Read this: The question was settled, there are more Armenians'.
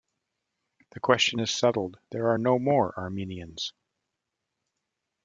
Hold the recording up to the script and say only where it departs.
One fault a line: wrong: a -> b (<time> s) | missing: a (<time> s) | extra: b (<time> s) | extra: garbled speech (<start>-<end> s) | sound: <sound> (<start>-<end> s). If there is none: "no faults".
wrong: was -> is (1.4 s)
extra: no (2.4 s)